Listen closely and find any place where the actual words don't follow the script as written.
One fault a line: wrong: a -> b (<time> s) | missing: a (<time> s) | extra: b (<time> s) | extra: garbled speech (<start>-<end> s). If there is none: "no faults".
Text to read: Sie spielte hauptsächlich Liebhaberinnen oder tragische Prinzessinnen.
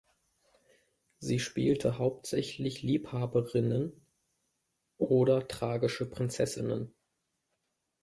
no faults